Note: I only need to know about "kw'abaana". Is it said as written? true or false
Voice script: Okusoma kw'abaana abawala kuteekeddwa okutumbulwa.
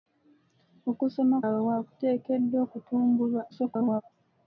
false